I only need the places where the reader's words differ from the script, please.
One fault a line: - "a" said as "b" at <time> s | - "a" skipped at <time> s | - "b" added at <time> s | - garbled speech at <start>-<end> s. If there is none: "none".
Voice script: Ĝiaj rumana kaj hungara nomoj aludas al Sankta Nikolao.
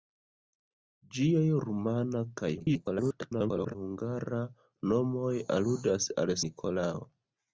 - garbled speech at 2.6-3.8 s
- "Sankta" skipped at 6.3 s